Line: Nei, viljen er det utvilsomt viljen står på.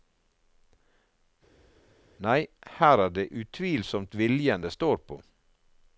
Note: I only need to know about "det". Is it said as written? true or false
true